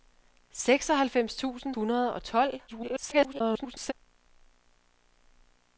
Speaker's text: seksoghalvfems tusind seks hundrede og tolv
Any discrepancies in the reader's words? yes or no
yes